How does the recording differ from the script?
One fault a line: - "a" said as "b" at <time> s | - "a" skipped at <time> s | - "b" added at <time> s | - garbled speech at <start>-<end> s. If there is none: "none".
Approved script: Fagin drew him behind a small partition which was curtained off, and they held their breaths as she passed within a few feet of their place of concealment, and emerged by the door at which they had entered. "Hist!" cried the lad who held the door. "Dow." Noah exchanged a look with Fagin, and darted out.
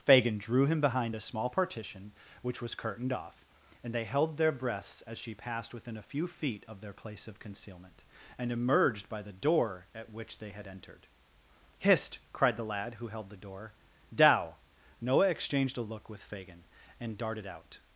none